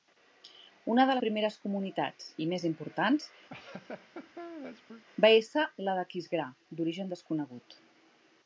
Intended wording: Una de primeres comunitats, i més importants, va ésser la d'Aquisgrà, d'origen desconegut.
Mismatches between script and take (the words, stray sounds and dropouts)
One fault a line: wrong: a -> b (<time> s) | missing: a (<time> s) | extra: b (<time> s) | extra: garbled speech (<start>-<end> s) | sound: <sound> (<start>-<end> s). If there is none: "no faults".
sound: laugh (3.5-5.0 s)